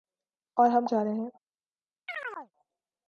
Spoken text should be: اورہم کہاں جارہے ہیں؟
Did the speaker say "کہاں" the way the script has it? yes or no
no